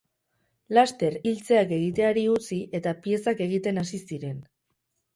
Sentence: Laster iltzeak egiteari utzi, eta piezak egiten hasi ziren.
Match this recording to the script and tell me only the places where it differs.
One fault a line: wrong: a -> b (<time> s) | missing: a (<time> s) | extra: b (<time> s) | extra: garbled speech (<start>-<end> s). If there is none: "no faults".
no faults